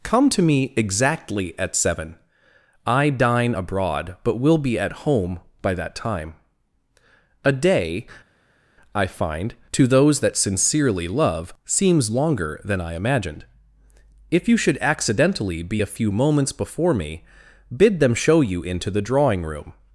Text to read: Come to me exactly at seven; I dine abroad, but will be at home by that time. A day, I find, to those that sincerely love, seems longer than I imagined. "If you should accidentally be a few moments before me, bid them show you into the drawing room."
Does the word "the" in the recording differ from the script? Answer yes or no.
no